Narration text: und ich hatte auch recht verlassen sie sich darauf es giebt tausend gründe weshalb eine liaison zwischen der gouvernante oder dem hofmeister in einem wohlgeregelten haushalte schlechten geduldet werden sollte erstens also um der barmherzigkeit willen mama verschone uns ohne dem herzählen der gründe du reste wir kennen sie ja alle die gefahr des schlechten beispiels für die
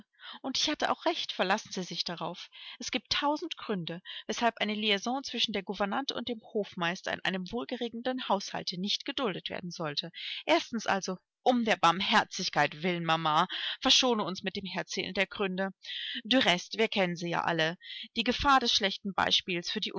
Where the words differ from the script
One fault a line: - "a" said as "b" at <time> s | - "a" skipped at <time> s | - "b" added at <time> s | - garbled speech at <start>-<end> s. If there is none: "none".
- "oder" said as "und" at 6.1 s
- "schlechten" said as "nicht" at 8.8 s
- "ohne" said as "mit" at 14.4 s